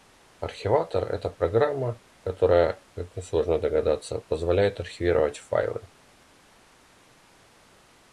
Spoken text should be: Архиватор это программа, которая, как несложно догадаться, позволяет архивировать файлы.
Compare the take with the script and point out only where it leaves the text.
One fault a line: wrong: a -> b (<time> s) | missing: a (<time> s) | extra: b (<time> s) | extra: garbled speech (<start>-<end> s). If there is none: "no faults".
no faults